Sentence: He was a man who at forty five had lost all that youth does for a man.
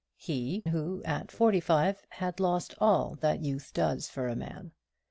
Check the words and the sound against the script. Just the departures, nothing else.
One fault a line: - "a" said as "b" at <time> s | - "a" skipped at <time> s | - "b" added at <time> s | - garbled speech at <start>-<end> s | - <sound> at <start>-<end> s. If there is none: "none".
- "was a man" skipped at 0.7 s